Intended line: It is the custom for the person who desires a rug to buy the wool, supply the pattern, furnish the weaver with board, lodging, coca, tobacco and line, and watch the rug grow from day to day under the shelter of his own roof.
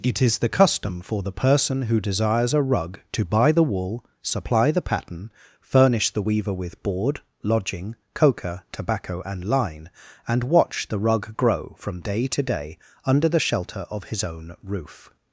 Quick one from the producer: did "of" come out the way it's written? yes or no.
yes